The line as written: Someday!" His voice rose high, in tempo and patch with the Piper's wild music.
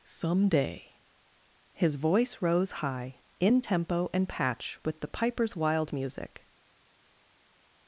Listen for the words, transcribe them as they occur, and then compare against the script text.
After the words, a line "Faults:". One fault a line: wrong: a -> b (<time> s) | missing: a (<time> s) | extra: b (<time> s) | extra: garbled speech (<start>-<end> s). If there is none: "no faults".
Someday!" His voice rose high, in tempo and patch with the Piper's wild music.
Faults:
no faults